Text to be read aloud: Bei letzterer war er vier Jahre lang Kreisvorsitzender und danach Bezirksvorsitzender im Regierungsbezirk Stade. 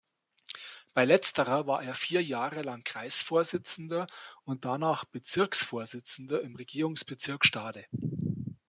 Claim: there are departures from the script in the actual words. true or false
false